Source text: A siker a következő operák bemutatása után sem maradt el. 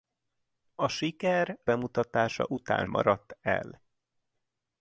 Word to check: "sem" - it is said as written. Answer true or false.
false